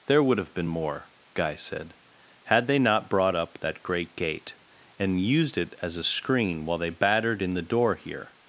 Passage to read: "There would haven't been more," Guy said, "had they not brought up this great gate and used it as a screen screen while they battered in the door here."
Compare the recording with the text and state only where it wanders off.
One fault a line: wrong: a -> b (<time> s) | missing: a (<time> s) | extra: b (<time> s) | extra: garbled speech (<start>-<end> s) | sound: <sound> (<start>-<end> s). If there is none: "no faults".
wrong: haven't -> have (0.4 s)
wrong: this -> that (3.6 s)
missing: screen (6.6 s)